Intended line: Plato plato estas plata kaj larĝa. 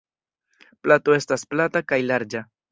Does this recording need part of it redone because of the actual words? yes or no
yes